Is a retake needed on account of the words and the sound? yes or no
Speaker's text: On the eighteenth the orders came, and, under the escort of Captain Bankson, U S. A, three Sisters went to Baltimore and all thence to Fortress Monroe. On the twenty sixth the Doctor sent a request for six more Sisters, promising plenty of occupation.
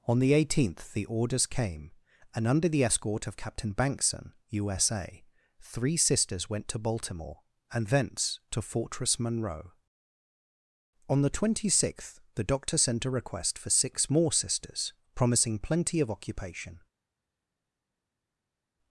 yes